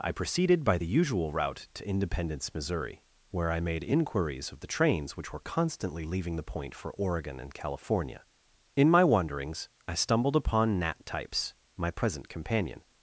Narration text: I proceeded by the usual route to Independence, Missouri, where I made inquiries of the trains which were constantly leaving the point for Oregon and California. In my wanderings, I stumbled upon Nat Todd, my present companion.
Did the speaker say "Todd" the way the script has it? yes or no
no